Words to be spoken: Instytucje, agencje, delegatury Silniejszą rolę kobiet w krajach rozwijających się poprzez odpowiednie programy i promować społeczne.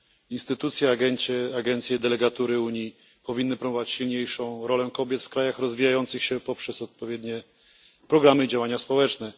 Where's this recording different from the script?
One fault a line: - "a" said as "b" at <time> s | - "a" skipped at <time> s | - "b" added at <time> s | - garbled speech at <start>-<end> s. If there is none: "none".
- "Unii powinny promować" added at 2.6 s
- "promować" said as "działania" at 8.5 s